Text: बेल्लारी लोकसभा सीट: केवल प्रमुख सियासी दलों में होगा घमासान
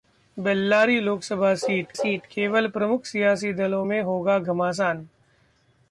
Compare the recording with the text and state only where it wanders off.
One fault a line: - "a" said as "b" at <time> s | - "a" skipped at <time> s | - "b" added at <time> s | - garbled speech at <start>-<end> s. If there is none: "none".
- "सीट" added at 2.0 s